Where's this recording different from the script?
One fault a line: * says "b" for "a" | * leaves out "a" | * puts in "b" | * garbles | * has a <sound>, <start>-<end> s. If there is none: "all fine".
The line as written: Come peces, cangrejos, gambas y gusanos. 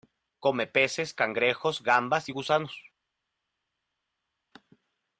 all fine